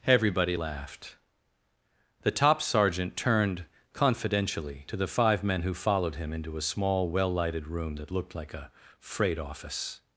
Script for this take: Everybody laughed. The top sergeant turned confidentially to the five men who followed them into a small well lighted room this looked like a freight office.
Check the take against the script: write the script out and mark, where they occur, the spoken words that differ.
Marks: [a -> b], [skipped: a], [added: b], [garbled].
Everybody laughed. The top sergeant turned confidentially to the five men who followed [them -> him] into a small well lighted room [this -> that] looked like a freight office.